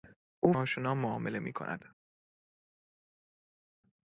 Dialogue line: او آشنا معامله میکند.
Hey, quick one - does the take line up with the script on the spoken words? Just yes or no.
yes